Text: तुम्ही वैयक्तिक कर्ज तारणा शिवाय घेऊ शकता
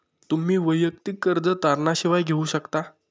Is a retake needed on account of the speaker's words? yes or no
no